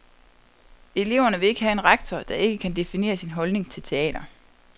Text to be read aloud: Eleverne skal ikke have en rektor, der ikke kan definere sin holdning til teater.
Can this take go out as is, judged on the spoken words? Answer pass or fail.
fail